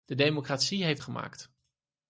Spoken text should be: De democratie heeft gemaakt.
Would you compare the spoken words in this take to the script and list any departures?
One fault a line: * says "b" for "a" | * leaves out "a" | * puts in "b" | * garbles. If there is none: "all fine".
all fine